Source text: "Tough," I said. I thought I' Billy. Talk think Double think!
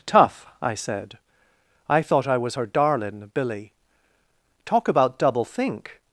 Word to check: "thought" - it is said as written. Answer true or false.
true